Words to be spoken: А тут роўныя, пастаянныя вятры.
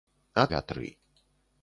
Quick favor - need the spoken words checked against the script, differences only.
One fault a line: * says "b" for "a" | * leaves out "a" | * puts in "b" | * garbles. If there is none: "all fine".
* leaves out "тут роўныя пастаянныя"